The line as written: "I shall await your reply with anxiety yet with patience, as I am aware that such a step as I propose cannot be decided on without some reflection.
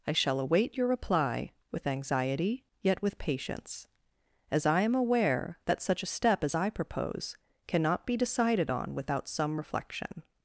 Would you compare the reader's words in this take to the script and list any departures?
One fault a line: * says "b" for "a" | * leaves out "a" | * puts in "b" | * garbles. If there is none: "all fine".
all fine